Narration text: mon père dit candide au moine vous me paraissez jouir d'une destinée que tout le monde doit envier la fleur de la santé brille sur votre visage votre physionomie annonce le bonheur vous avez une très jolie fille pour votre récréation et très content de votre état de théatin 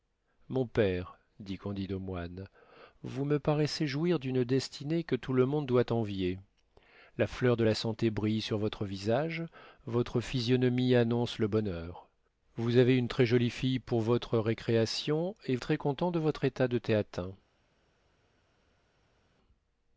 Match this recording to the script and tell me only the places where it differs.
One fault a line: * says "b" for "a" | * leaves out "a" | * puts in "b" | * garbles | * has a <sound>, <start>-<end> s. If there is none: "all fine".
all fine